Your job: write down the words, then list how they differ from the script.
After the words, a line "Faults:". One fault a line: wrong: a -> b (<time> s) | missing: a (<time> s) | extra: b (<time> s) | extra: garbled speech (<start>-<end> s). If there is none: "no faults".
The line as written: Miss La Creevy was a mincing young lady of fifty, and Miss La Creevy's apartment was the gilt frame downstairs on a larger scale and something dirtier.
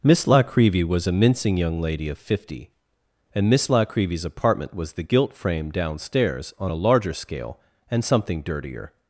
Miss La Creevy was a mincing young lady of fifty, and Miss La Creevy's apartment was the gilt frame downstairs on a larger scale and something dirtier.
Faults:
no faults